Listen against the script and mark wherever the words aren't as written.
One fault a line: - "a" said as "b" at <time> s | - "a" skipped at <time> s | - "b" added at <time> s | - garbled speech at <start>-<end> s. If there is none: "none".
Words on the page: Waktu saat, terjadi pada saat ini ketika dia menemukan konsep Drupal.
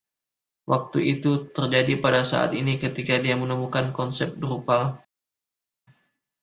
- "saat" said as "itu" at 1.2 s